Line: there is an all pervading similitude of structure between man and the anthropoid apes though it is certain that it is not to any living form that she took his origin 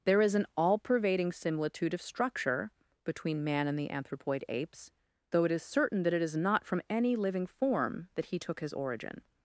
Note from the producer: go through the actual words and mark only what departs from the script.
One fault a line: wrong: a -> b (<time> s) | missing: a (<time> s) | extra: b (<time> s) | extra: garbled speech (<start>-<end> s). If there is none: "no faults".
wrong: to -> from (6.7 s)
wrong: she -> he (8.3 s)